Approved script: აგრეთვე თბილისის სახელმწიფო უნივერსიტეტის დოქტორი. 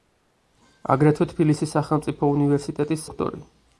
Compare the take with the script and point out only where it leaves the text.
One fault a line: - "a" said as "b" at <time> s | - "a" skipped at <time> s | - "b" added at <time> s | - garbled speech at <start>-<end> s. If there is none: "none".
none